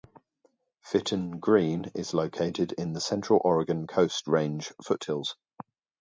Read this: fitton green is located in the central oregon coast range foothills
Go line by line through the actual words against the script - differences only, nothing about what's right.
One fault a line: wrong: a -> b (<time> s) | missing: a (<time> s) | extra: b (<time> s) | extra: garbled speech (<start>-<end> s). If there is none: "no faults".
no faults